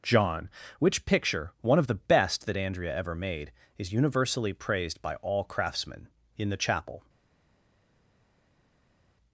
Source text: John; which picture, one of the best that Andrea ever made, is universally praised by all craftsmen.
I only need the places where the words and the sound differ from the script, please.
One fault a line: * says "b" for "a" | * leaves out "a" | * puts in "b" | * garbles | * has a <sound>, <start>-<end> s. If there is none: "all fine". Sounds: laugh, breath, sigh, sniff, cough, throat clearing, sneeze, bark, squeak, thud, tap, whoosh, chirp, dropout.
* puts in "In the Chapel"